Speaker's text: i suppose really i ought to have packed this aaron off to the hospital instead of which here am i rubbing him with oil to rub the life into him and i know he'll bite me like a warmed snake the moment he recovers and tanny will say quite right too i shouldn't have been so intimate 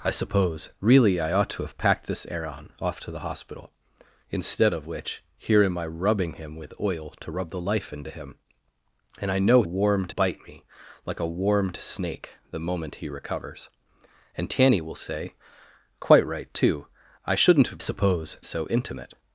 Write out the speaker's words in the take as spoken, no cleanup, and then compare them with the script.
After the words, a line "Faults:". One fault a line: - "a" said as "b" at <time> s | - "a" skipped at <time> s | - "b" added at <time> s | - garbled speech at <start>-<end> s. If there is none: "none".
i suppose really i ought to have packed this aaron off to the hospital instead of which here am i rubbing him with oil to rub the life into him and i know warmed bite me like a warmed snake the moment he recovers and tanny will say quite right too i shouldn't have suppose so intimate
Faults:
- "he'll" said as "warmed" at 9.6 s
- "been" said as "suppose" at 17.8 s